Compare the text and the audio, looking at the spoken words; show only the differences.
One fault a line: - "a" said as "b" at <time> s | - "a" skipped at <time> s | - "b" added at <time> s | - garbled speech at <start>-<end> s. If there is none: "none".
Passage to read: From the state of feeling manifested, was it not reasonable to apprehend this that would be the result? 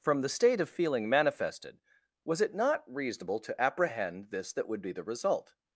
none